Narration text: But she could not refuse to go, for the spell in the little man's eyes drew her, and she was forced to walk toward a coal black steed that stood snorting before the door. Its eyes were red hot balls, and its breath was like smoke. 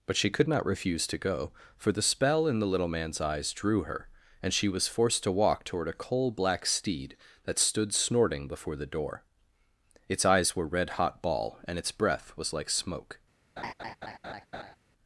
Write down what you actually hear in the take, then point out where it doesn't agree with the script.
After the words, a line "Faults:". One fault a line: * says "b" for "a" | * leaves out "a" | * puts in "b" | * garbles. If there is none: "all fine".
But she could not refuse to go, for the spell in the little man's eyes drew her, and she was forced to walk toward a coal black steed that stood snorting before the door. Its eyes were red hot ball, and its breath was like smoke.
Faults:
* says "ball" for "balls"